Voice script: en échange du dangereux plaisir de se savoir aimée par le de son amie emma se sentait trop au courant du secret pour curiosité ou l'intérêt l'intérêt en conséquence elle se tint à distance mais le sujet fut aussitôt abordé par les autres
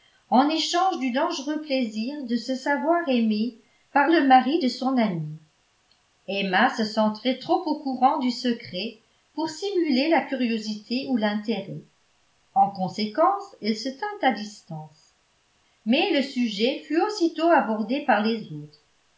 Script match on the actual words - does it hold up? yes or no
no